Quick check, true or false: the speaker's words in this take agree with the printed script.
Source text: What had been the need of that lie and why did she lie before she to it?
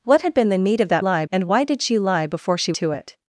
true